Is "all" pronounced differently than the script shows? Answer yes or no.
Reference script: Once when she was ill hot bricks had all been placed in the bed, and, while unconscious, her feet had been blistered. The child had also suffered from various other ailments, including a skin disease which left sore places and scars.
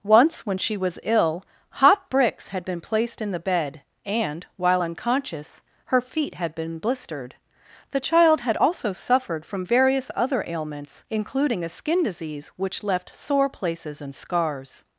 yes